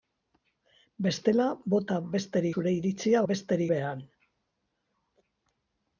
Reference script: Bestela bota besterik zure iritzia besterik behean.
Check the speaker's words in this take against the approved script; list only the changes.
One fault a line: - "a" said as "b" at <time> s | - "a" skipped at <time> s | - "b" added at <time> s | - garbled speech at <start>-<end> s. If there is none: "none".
none